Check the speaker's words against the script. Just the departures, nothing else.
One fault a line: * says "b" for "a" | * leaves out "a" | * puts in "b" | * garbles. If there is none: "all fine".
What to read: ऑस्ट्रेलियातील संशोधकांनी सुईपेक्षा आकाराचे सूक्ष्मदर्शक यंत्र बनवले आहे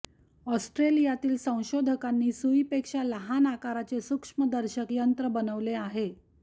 * puts in "लहान"